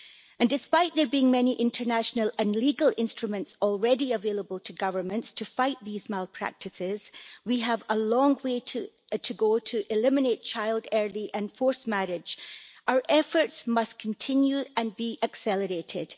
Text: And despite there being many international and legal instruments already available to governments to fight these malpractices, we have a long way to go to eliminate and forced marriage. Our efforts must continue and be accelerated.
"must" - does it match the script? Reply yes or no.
yes